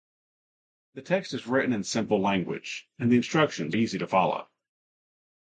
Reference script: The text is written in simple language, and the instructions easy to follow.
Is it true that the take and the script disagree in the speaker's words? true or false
false